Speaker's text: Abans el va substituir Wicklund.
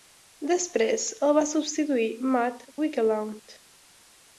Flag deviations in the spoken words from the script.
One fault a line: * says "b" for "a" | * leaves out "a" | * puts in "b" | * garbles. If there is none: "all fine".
* says "Després" for "Abans"
* puts in "Matt"